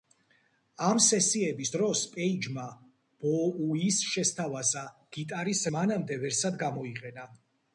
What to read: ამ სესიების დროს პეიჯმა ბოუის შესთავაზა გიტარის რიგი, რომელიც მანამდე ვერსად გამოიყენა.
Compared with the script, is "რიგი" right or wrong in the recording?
wrong